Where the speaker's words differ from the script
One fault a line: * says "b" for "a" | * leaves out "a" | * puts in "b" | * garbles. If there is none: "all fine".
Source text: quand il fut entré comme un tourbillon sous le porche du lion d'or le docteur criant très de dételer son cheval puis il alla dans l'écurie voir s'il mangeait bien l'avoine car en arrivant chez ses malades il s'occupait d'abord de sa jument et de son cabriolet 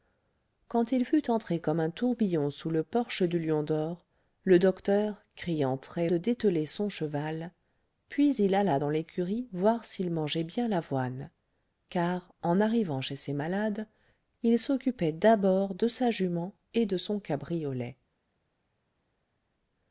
all fine